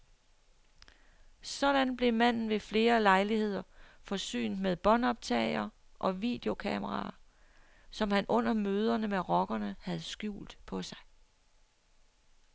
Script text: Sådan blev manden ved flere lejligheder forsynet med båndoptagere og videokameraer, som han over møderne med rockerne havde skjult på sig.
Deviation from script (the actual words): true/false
true